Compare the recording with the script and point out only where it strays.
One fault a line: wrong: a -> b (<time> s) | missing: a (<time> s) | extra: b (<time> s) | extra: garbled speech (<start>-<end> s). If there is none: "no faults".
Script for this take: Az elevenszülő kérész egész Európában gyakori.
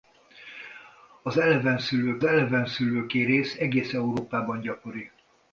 extra: elevenszülő (2.2 s)